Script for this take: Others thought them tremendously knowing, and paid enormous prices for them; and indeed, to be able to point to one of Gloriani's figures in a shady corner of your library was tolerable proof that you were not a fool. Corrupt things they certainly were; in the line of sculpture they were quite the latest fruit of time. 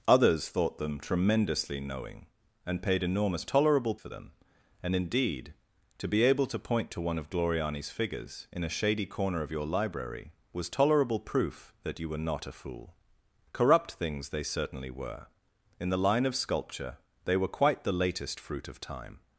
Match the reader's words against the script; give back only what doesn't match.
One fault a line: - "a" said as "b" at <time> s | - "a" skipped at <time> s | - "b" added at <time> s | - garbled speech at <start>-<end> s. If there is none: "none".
- "prices" said as "tolerable" at 3.5 s